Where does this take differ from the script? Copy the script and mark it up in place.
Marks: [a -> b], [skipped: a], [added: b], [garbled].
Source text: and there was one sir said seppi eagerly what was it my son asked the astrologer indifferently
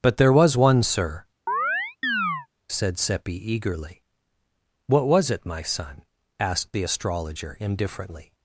[and -> but] there was one sir said seppi eagerly what was it my son asked the astrologer indifferently